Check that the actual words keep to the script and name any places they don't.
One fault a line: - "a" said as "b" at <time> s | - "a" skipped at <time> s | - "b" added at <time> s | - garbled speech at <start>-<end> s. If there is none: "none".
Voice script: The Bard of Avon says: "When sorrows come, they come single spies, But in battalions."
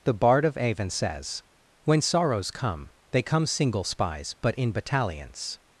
none